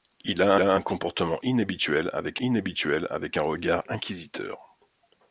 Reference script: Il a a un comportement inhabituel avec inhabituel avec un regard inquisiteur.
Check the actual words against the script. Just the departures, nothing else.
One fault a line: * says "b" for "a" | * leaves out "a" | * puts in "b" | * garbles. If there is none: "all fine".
all fine